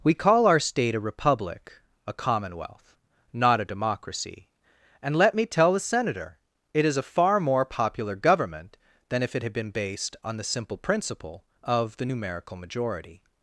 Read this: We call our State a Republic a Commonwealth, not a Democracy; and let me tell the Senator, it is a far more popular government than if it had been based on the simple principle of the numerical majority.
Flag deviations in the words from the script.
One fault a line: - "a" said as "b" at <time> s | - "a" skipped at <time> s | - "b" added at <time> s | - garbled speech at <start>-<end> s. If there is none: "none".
none